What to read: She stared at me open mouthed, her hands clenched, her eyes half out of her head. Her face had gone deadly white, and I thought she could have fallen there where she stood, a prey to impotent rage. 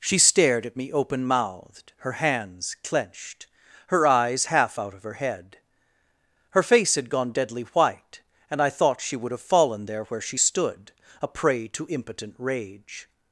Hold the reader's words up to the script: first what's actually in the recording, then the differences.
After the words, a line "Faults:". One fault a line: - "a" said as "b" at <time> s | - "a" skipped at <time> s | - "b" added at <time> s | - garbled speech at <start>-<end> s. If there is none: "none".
She stared at me open mouthed, her hands clenched, her eyes half out of her head. Her face had gone deadly white, and I thought she would have fallen there where she stood, a prey to impotent rage.
Faults:
- "could" said as "would" at 9.2 s